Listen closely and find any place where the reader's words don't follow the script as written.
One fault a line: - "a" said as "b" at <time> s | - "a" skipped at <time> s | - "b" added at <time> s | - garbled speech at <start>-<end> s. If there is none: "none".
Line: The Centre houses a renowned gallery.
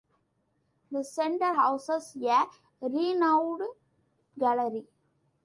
none